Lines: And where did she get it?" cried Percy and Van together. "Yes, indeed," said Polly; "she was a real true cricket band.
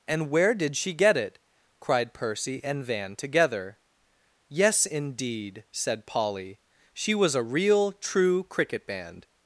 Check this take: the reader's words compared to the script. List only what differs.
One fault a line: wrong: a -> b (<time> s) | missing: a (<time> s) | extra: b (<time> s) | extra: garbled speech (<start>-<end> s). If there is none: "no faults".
no faults